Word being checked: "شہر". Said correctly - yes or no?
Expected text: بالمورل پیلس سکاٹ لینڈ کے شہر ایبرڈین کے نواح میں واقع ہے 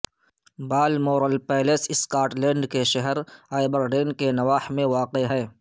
yes